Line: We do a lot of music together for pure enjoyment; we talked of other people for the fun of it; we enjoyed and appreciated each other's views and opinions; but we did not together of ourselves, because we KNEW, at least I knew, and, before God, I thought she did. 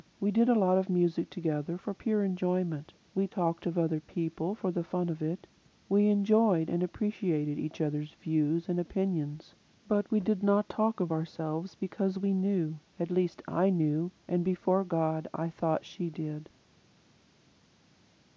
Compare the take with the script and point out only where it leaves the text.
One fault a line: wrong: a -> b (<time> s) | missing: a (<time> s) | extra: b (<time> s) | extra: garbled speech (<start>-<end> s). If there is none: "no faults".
wrong: do -> did (0.3 s)
wrong: together -> talk (10.7 s)